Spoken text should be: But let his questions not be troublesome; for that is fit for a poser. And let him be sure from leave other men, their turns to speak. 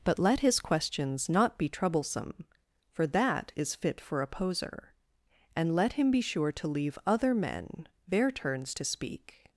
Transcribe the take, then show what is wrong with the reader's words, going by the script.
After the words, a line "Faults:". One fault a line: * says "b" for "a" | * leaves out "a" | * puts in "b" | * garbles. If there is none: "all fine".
But let his questions not be troublesome; for that is fit for a poser. And let him be sure to leave other men, their turns to speak.
Faults:
* says "to" for "from"